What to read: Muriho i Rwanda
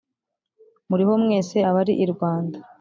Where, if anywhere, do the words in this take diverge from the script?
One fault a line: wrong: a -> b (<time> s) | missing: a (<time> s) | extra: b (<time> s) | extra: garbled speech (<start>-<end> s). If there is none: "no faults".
extra: mwese abari (1.2 s)